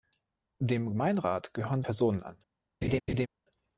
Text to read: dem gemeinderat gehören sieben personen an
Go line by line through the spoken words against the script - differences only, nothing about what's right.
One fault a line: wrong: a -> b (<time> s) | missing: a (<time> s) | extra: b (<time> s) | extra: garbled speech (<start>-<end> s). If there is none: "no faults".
missing: sieben (1.8 s)